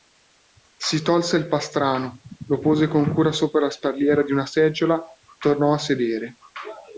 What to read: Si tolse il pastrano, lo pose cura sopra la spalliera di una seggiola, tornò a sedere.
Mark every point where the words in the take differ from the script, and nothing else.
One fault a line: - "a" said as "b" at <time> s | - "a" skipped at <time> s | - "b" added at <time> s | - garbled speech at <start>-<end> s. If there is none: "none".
- "con" added at 2.9 s